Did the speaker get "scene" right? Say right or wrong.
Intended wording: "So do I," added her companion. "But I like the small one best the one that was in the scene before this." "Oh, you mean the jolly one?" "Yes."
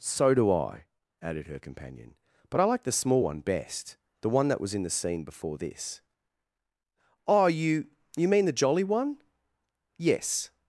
right